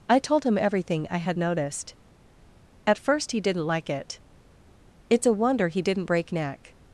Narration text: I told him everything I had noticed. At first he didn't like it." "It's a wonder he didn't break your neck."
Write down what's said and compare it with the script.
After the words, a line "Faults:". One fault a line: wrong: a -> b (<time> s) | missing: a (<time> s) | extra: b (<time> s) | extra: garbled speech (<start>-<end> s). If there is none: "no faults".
I told him everything I had noticed. At first he didn't like it." "It's a wonder he didn't break neck."
Faults:
missing: your (6.3 s)